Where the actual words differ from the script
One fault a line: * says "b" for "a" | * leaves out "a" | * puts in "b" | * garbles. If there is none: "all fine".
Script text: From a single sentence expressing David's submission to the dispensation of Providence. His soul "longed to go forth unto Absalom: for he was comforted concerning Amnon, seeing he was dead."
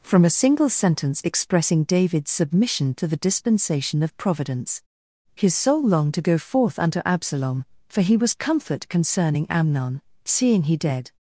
* says "comfort" for "comforted"
* leaves out "was"